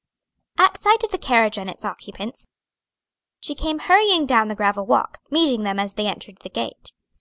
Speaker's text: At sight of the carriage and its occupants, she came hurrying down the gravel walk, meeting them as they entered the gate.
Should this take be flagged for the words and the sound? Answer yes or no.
no